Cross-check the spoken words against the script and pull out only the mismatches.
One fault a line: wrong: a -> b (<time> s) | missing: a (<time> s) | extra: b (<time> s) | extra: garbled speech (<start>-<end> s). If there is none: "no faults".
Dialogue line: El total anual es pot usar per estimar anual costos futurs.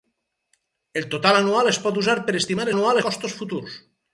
no faults